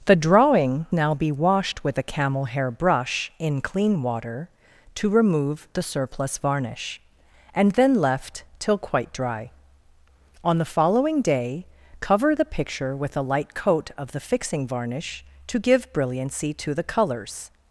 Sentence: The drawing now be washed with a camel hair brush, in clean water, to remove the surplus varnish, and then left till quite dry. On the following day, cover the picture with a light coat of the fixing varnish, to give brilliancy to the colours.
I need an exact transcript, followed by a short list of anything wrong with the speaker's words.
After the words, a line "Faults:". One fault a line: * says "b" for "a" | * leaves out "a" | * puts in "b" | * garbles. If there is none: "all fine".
The drawing now be washed with a camel hair brush, in clean water, to remove the surplus varnish, and then left till quite dry. On the following day, cover the picture with a light coat of the fixing varnish, to give brilliancy to the colours.
Faults:
all fine